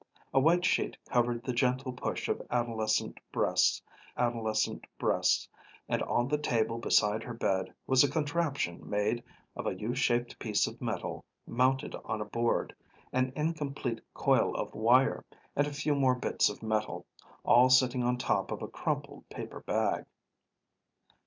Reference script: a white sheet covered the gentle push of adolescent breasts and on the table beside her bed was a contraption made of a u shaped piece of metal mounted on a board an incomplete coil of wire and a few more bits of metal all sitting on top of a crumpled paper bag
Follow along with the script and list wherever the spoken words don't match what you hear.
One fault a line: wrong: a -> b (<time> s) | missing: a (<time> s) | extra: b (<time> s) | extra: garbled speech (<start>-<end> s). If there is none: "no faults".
extra: adolescent breasts (4.2 s)